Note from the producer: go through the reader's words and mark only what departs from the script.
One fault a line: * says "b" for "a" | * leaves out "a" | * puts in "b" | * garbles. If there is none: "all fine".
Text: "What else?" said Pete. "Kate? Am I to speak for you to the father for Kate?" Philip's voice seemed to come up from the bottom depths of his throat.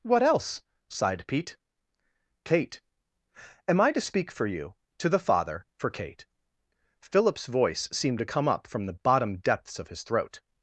* says "sighed" for "said"